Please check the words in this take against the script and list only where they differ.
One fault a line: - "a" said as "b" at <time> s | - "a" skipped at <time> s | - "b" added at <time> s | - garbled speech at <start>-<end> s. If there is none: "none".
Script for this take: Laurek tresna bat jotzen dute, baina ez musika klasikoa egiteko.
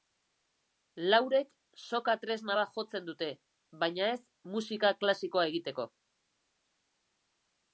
- "soka" added at 1.8 s